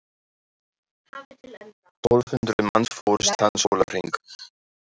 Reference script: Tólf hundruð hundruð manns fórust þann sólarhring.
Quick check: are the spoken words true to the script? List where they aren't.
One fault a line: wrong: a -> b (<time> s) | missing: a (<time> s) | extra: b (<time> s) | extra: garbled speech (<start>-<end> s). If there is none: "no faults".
missing: hundruð (2.7 s)